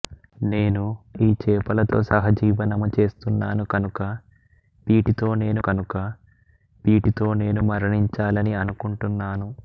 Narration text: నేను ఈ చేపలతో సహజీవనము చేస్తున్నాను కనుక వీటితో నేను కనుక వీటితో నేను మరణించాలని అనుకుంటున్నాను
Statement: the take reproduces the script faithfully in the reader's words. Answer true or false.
true